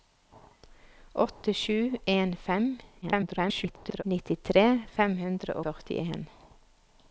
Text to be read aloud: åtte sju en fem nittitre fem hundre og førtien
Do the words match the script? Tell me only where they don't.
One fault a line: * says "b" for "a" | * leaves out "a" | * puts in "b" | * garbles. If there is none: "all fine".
* garbles
* leaves out "og"